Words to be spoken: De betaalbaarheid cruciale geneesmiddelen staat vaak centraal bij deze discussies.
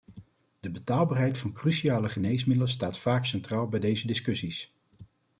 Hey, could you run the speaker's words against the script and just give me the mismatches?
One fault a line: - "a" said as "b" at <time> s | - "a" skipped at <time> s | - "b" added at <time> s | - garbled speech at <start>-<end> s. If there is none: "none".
- "van" added at 1.4 s